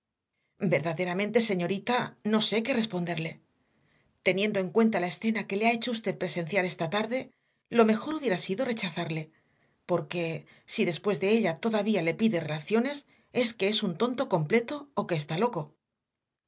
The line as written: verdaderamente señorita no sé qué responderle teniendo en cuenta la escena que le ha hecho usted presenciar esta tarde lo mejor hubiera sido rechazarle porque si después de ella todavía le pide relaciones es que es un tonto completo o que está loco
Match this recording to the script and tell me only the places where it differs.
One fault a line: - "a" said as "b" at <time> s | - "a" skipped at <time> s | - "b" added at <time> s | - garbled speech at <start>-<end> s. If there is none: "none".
none